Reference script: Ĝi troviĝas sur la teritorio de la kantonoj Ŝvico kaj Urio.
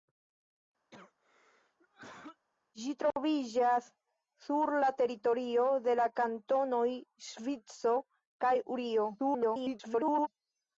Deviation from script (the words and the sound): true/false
true